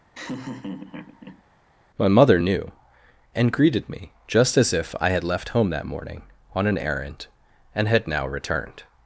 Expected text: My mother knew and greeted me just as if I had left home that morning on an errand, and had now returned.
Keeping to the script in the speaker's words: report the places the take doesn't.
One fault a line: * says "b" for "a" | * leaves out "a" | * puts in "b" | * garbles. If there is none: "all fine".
all fine